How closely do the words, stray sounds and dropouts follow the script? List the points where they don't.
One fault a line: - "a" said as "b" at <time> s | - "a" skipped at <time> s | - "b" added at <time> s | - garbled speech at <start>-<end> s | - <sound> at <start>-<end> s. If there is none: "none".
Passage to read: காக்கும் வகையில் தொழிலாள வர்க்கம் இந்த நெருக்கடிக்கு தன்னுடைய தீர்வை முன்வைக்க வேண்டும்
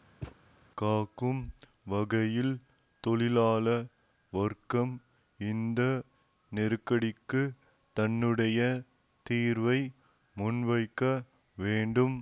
- thud at 0.2-0.4 s